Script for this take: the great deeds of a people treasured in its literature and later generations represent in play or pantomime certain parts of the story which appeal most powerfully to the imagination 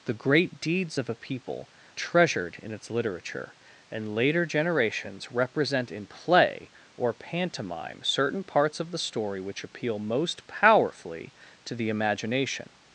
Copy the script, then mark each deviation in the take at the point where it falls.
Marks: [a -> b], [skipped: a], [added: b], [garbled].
the great deeds of a people treasured in its literature and later generations represent in play or pantomime certain parts of the story which appeal most powerfully to the imagination